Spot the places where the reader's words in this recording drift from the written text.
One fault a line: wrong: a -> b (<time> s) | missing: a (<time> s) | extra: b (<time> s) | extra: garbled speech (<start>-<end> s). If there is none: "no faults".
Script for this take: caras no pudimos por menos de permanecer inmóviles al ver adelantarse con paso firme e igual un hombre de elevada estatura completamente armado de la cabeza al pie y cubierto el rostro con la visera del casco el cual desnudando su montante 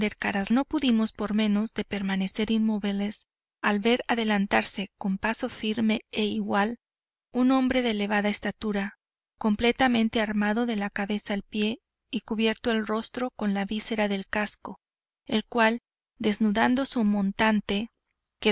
no faults